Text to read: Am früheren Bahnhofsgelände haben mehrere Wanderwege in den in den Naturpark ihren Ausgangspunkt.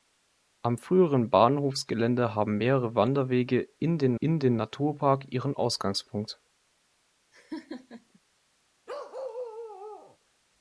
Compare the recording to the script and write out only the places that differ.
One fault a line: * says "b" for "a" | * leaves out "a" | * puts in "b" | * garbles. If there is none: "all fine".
all fine